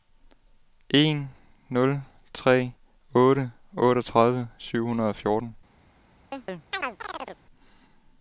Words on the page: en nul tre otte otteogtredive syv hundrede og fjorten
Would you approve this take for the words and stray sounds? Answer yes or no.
no